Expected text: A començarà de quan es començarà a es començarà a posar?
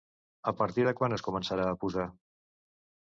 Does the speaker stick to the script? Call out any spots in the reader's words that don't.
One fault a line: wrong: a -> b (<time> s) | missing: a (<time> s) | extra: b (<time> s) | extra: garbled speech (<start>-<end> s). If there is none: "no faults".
wrong: començarà -> partir (0.6 s)
missing: es començarà a (1.8 s)